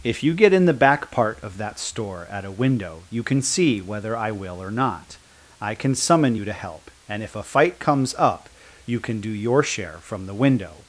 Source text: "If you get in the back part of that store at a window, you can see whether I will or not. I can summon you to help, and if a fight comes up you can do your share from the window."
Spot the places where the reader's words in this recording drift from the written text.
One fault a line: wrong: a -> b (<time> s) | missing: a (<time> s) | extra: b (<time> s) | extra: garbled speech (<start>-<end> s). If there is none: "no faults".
no faults